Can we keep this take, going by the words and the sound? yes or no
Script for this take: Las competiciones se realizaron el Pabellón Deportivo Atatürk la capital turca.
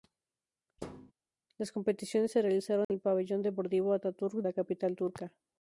no